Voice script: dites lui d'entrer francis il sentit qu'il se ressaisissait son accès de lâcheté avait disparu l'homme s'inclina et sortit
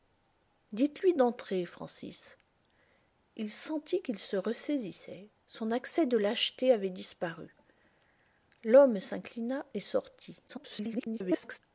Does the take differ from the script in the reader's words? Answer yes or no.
yes